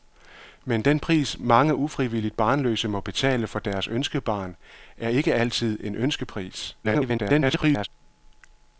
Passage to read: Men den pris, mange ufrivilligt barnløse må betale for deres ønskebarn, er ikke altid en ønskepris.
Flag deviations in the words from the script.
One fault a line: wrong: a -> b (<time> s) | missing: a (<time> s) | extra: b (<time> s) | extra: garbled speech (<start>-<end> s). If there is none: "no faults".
extra: garbled speech (6.8-7.9 s)